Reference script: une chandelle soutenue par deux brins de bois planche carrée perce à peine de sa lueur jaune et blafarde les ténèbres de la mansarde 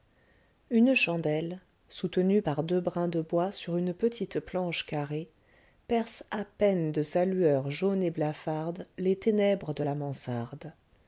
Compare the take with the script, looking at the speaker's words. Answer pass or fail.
fail